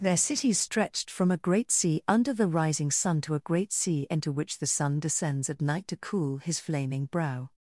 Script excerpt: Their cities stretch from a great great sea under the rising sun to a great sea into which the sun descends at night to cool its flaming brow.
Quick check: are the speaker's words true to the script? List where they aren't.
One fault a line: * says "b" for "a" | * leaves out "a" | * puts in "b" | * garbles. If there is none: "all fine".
* says "stretched" for "stretch"
* leaves out "great"
* says "his" for "its"